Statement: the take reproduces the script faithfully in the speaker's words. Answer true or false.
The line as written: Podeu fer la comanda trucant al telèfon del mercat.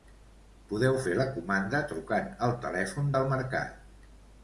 true